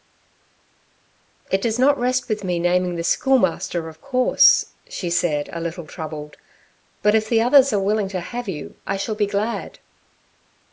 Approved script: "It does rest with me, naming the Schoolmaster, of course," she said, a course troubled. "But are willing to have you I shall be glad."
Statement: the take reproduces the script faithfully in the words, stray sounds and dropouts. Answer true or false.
false